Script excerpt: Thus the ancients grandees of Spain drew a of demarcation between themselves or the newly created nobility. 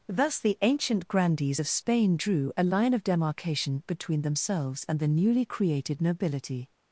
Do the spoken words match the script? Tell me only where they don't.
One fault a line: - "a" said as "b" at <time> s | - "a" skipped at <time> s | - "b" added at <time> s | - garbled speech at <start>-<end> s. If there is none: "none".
- "ancients" said as "ancient" at 0.6 s
- "line" added at 2.6 s
- "or" said as "and" at 4.9 s